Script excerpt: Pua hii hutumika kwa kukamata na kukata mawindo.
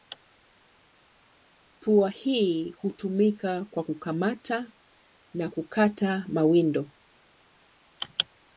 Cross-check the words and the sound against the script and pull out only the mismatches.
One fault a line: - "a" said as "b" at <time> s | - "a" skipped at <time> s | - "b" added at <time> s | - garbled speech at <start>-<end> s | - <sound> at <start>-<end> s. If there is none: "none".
none